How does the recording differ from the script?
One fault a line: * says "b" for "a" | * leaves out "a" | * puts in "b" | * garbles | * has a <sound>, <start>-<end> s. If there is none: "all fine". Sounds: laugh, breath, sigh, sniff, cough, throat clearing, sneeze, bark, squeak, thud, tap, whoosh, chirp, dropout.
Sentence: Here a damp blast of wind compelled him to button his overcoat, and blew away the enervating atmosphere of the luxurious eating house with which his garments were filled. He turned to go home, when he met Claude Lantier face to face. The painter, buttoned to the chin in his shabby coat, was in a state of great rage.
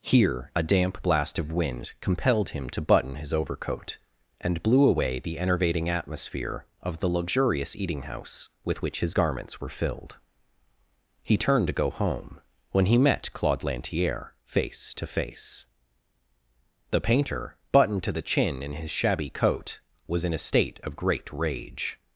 all fine